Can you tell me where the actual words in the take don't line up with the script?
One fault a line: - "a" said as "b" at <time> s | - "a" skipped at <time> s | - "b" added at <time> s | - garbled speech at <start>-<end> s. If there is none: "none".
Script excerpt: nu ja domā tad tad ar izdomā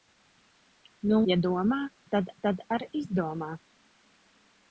none